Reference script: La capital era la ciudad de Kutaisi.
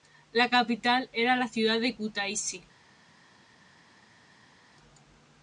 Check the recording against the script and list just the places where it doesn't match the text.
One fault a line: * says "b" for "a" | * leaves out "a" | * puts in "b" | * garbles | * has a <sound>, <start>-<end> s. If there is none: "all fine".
all fine